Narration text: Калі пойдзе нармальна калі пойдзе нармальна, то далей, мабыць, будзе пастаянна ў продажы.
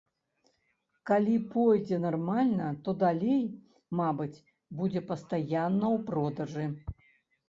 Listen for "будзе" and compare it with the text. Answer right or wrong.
right